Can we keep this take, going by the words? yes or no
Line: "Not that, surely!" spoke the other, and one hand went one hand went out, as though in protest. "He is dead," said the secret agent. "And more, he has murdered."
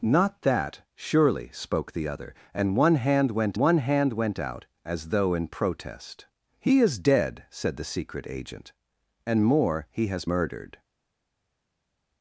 yes